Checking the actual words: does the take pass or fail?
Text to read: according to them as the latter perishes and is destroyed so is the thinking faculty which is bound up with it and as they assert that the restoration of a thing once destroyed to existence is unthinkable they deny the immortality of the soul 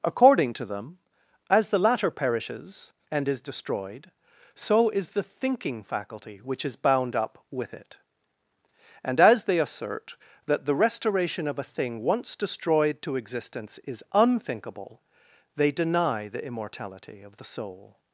pass